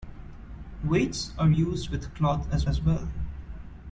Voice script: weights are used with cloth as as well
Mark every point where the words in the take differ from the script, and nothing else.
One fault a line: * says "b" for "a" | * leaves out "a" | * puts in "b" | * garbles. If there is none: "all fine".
all fine